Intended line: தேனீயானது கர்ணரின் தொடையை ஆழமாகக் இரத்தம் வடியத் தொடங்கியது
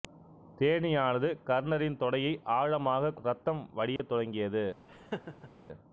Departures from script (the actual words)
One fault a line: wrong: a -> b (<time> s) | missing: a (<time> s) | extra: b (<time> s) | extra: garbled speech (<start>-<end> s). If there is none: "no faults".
no faults